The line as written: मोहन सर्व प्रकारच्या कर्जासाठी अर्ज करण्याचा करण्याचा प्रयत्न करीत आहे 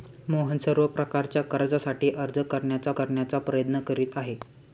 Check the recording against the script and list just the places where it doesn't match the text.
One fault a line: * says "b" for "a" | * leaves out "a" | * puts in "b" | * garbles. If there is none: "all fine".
all fine